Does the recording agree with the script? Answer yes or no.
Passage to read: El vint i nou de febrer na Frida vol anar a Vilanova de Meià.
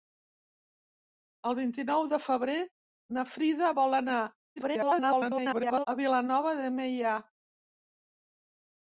no